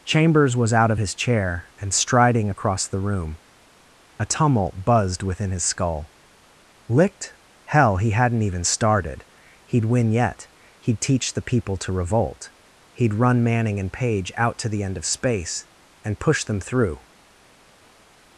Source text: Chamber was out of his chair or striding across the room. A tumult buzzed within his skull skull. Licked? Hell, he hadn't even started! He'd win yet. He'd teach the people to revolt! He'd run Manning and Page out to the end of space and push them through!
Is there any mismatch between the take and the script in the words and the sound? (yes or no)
yes